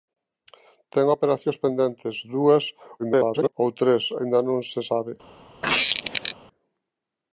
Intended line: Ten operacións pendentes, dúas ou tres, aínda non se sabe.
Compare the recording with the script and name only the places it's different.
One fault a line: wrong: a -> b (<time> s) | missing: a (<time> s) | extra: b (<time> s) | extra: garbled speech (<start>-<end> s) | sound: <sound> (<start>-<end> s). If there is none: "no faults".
extra: garbled speech (3.0-3.5 s)
sound: squeak (5.6-6.4 s)